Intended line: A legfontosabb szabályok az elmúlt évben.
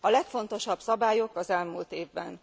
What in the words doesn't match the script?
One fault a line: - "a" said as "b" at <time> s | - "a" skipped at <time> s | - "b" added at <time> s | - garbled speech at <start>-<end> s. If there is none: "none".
none